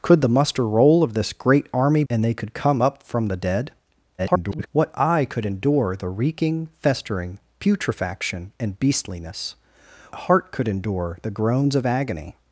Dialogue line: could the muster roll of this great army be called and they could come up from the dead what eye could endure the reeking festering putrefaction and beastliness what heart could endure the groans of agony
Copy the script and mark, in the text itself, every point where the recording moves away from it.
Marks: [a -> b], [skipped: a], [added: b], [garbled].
could the muster roll of this great army [skipped: be called] and they could come up from the dead [garbled] what eye could endure the reeking festering putrefaction and beastliness [skipped: what] heart could endure the groans of agony